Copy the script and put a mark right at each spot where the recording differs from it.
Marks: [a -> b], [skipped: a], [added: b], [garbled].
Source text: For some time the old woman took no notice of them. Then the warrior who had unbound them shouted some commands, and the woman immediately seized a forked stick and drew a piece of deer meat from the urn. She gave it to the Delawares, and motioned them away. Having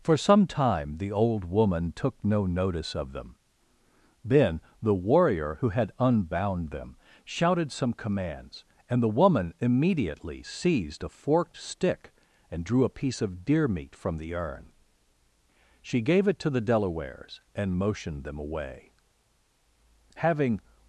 For some time the old woman took no notice of them. Then the warrior who had unbound them shouted some commands, and the woman immediately seized a forked stick and drew a piece of deer meat from the urn. She gave it to the Delawares, and motioned them away. Having